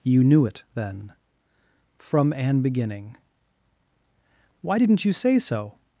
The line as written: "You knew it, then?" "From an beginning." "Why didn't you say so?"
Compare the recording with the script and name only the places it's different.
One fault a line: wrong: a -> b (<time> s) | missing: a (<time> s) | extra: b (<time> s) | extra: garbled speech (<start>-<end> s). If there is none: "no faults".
no faults